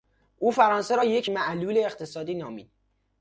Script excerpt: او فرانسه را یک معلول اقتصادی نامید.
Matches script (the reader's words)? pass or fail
pass